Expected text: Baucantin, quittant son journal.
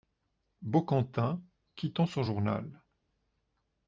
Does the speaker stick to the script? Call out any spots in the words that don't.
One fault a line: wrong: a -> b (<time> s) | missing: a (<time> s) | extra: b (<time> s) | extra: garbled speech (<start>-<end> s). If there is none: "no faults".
no faults